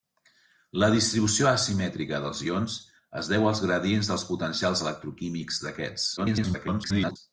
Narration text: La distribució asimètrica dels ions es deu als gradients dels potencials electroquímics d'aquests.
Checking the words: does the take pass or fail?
fail